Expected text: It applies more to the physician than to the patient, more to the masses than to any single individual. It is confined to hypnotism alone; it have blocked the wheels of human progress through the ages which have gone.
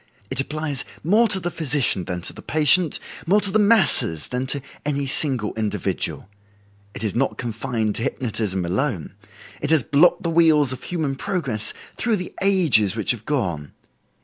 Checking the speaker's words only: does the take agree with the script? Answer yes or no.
no